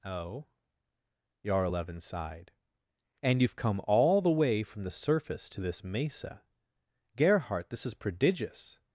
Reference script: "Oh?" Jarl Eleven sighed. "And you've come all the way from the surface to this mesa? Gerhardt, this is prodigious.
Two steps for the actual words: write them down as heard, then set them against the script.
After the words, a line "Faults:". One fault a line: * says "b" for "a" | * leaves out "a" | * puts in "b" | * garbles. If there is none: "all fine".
"Oh?" Jarl Eleven sighed. "And you've come all the way from the surface to this mesa? Gerhardt, this is prodigious.
Faults:
all fine